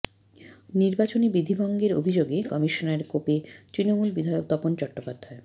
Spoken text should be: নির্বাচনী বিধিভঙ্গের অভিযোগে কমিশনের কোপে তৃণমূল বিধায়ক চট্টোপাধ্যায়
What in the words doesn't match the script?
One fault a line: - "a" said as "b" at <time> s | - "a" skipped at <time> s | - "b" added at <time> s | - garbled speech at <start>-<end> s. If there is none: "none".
- "তপন" added at 4.5 s